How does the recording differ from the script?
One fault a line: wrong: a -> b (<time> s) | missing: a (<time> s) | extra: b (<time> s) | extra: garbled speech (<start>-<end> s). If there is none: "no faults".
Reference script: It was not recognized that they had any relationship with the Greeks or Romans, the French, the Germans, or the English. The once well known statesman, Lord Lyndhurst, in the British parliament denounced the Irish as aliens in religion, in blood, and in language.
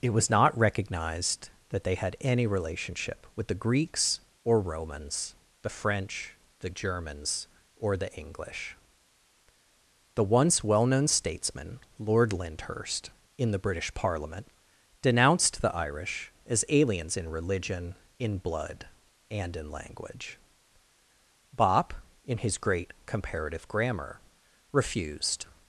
extra: Bopp in his great Comparative Grammar refused (21.6 s)